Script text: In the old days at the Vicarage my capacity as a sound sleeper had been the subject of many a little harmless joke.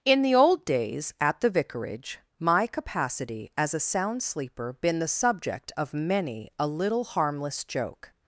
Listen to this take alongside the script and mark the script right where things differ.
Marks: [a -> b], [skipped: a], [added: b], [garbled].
In the old days at the Vicarage my capacity as a sound sleeper [skipped: had] been the subject of many a little harmless joke.